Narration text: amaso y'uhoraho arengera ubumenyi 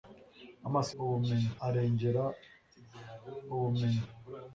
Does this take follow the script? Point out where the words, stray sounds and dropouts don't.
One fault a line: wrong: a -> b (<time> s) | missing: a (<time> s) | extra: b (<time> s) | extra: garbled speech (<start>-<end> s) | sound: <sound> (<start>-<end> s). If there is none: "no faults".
wrong: y'uhoraho -> ubumenyi (1.0 s)